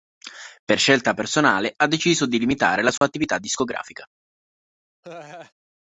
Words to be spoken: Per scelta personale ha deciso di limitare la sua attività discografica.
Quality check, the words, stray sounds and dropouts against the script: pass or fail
fail